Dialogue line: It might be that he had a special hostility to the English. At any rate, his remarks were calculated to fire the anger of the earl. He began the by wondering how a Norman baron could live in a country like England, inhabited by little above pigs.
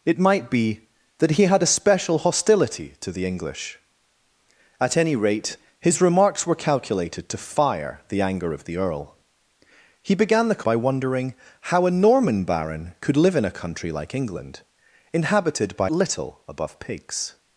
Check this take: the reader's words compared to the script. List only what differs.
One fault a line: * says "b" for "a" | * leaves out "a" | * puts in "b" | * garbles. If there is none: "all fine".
all fine